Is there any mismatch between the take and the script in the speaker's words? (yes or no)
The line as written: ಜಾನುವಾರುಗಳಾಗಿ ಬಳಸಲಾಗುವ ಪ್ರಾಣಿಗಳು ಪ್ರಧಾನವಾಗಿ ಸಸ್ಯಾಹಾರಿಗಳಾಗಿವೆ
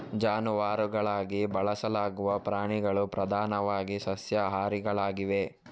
no